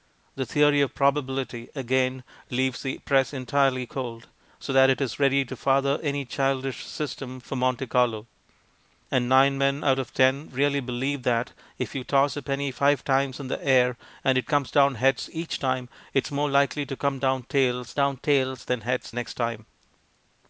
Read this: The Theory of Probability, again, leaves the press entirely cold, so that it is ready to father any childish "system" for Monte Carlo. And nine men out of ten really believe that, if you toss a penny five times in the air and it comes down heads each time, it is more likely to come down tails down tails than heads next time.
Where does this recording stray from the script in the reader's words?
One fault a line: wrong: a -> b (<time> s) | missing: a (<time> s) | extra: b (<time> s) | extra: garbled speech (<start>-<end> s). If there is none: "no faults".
no faults